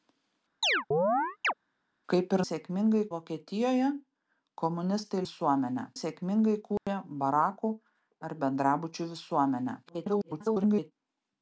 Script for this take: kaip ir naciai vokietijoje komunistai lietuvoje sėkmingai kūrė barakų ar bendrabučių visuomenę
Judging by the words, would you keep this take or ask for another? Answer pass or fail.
fail